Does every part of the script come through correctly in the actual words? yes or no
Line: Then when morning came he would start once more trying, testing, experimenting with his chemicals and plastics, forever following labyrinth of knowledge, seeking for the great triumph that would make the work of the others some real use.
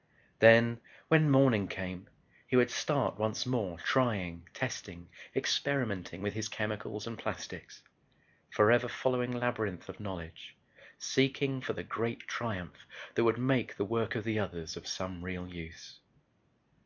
no